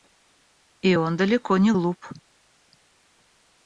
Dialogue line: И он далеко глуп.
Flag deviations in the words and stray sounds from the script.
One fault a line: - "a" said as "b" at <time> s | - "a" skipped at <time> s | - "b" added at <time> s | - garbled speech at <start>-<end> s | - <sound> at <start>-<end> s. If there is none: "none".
- "не" added at 1.6 s